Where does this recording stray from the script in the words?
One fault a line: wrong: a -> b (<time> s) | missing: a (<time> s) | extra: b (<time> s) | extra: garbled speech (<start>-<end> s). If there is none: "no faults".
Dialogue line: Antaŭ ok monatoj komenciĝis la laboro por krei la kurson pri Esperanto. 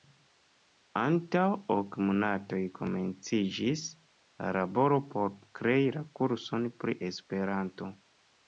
no faults